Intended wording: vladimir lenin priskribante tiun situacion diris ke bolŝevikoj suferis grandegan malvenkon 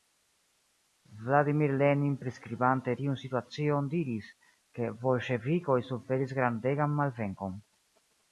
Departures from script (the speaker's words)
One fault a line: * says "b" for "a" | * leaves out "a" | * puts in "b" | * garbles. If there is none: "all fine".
all fine